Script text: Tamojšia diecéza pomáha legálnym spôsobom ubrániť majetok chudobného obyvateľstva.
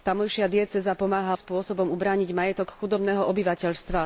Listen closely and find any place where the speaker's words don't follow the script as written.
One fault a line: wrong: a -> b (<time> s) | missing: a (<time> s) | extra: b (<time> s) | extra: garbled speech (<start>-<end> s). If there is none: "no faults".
missing: legálnym (1.4 s)